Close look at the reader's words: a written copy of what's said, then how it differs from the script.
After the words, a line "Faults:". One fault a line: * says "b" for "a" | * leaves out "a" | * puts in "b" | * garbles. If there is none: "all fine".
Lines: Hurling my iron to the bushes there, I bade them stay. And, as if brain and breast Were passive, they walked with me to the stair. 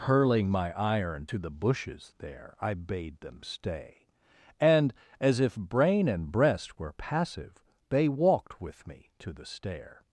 Hurling my iron to the bushes there, I bade them stay. And, as if brain and breast Were passive, they walked with me to the stair.
Faults:
all fine